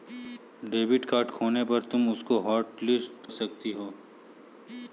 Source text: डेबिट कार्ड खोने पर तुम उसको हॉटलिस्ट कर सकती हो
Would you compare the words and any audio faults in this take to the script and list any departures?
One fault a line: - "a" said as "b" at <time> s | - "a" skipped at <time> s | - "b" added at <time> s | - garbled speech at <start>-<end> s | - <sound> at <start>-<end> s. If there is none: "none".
- "कर" skipped at 3.3 s